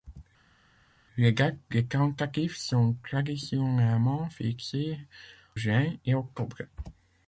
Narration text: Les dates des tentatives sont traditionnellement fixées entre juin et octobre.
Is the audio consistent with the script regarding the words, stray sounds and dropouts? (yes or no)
no